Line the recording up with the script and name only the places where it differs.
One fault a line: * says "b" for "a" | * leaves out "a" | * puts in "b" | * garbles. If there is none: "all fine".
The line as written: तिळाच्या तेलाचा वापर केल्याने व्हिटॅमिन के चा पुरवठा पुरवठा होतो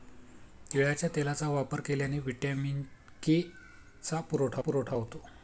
all fine